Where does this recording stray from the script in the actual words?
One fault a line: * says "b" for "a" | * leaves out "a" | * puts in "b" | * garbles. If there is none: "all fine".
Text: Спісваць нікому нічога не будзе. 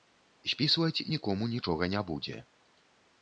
all fine